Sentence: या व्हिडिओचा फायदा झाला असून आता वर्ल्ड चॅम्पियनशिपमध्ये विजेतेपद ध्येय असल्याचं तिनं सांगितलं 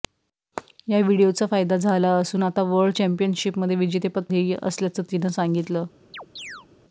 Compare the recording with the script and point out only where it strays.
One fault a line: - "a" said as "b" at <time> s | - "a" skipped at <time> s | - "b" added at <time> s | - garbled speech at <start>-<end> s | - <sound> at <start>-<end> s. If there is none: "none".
- chirp at 6.1-6.7 s